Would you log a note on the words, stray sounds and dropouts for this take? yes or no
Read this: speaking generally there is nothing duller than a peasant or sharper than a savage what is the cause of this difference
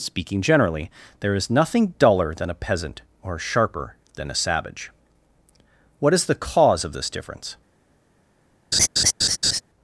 yes